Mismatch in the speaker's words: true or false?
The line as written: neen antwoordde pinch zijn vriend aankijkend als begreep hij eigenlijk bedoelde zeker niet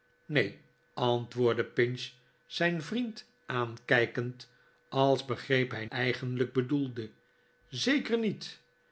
false